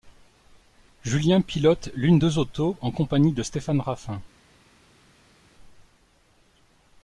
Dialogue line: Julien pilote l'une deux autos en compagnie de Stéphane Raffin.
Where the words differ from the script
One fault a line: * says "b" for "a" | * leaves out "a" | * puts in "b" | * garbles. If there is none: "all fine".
all fine